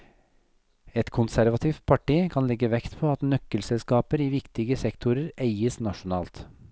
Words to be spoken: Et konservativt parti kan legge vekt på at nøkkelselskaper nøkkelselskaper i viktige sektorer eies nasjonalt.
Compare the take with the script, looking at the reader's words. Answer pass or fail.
fail